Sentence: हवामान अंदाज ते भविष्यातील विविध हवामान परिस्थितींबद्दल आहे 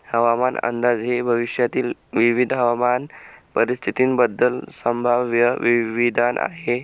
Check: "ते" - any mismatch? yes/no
yes